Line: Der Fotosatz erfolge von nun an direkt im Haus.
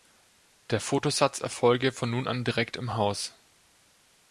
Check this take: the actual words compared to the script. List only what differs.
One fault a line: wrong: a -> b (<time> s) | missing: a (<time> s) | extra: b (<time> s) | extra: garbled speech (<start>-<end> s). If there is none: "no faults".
no faults